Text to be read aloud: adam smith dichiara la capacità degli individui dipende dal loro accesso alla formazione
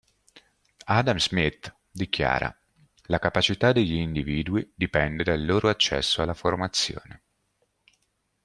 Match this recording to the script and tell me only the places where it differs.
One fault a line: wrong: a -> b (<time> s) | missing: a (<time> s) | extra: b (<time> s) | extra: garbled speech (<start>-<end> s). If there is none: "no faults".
no faults